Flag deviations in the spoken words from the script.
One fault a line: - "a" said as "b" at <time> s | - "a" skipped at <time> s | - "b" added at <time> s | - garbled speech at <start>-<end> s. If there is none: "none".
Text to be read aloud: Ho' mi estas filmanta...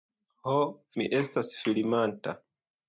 none